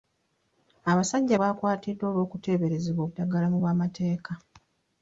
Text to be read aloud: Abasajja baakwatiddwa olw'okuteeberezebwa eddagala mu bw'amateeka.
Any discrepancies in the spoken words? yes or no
no